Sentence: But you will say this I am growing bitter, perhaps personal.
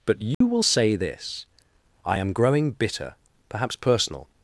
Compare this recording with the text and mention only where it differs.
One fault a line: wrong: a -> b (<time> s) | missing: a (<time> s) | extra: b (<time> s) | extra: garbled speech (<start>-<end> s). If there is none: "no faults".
no faults